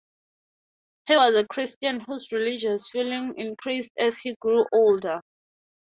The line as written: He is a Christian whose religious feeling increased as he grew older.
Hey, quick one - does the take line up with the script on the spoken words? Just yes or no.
no